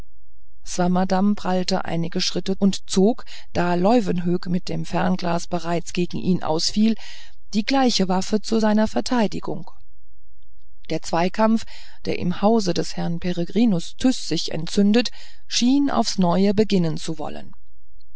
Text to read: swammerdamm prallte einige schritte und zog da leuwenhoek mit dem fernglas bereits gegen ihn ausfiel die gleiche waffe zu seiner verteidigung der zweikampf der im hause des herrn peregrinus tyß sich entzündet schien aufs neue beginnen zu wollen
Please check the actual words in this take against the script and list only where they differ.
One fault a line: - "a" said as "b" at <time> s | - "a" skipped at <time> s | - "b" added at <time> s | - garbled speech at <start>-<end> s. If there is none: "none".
none